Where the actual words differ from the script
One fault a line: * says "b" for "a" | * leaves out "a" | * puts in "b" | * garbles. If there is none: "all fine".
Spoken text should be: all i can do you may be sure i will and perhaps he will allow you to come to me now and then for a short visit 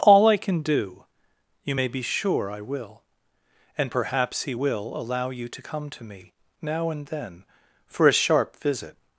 * says "sharp" for "short"